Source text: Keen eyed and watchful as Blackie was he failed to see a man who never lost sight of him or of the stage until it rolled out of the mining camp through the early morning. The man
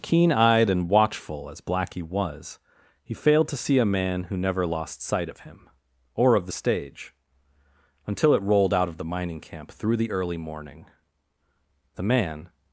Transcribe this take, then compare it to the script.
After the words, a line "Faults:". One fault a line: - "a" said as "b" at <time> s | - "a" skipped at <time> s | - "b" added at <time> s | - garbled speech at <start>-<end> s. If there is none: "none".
Keen eyed and watchful as Blackie was he failed to see a man who never lost sight of him or of the stage until it rolled out of the mining camp through the early morning. The man
Faults:
none